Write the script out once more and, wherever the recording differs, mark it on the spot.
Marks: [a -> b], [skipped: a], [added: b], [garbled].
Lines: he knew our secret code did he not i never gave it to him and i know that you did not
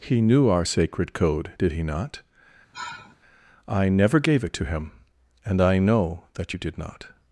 he knew our [secret -> sacred] code did he not i never gave it to him and i know that you did not